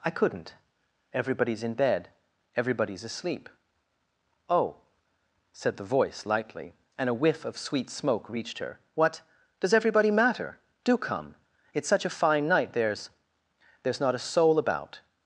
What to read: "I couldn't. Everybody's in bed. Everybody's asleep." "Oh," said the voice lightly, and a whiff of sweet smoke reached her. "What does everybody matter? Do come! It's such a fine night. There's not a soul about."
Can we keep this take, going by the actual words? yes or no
no